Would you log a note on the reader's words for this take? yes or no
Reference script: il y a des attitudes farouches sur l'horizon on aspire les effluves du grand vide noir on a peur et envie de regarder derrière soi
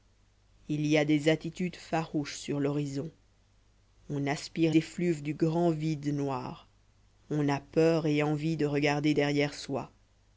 yes